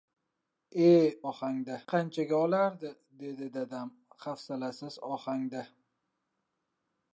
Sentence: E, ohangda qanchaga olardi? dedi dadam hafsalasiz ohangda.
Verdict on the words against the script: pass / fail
pass